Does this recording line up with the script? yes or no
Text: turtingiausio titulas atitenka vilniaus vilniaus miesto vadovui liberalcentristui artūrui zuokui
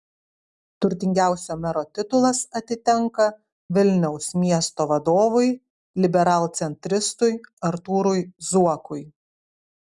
no